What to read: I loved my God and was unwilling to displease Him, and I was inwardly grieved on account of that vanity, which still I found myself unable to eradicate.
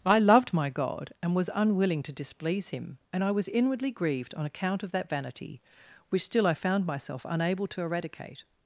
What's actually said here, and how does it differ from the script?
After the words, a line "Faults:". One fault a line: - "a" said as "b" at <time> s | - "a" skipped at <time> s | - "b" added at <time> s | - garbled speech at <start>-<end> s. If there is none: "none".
I loved my God and was unwilling to displease Him, and I was inwardly grieved on account of that vanity, which still I found myself unable to eradicate.
Faults:
none